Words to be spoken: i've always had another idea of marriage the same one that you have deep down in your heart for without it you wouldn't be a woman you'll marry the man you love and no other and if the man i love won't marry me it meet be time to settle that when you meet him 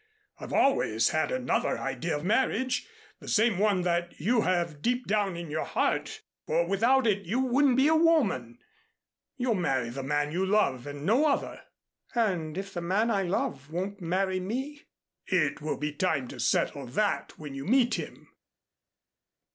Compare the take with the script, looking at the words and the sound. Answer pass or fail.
fail